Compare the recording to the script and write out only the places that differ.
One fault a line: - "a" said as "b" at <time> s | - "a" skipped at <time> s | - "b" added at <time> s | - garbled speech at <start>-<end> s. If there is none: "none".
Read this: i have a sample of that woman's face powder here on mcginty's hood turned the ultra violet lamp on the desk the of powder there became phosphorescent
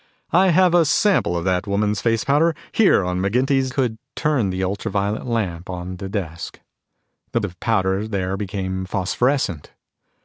none